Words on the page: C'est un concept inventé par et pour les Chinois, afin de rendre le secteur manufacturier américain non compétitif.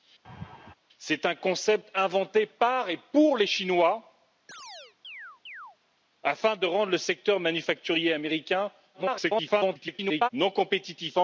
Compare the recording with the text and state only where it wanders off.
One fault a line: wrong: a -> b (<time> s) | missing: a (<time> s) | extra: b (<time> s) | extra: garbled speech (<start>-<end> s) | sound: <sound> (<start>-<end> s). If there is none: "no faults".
sound: laugh (0.2-0.7 s)
sound: chirp (4.5-5.8 s)
extra: garbled speech (8.9-10.3 s)